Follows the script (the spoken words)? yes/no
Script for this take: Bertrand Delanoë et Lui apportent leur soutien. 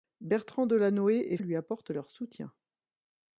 yes